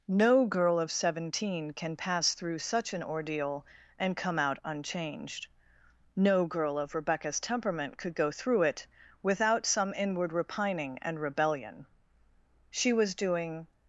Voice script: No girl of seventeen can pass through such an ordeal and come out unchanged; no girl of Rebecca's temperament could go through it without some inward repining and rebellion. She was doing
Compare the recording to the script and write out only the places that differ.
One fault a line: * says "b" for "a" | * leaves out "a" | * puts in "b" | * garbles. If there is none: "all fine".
all fine